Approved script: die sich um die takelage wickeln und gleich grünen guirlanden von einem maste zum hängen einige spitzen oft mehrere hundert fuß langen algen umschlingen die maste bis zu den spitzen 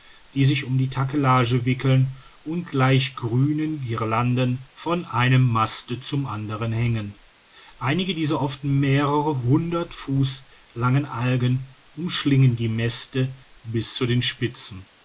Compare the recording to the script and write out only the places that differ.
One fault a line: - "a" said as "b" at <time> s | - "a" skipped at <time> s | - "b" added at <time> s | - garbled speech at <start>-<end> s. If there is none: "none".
- "anderen" added at 6.2 s
- "spitzen" said as "dieser" at 8.1 s